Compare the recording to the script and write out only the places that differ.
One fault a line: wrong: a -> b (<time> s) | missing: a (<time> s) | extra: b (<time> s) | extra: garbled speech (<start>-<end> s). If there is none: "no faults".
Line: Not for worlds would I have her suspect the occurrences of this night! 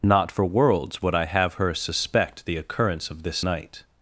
wrong: occurrences -> occurrence (2.6 s)